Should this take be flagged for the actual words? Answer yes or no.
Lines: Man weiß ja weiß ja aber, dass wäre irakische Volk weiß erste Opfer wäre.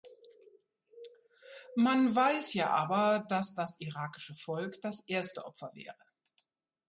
yes